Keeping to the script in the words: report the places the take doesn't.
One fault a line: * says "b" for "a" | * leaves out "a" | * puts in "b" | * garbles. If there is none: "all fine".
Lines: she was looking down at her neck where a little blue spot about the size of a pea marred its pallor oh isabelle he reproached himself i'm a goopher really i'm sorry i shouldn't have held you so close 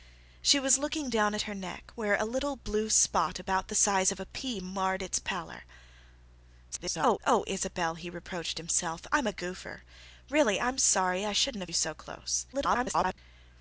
* garbles
* leaves out "held"
* garbles